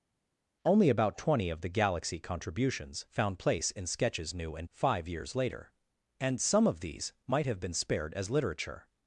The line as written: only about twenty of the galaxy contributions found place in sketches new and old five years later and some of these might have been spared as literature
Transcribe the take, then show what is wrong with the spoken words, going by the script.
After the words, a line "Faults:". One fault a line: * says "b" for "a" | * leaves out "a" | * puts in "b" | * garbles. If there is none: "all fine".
only about twenty of the galaxy contributions found place in sketches new and five years later and some of these might have been spared as literature
Faults:
* leaves out "old"